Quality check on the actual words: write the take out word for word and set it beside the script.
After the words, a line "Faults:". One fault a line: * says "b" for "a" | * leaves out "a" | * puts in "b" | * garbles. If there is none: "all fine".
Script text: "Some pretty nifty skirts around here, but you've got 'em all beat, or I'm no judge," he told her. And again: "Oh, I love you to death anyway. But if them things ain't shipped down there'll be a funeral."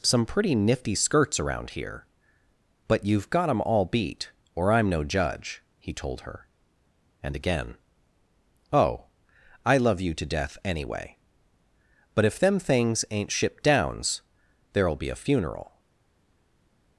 "Some pretty nifty skirts around here, but you've got 'em all beat, or I'm no judge," he told her. And again: "Oh, I love you to death anyway. But if them things ain't shipped downs there'll be a funeral."
Faults:
* says "downs" for "down"